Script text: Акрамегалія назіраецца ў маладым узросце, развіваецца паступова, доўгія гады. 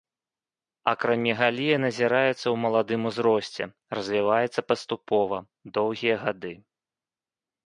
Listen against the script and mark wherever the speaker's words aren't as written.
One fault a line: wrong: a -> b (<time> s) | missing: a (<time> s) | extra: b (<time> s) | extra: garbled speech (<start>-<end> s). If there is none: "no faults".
no faults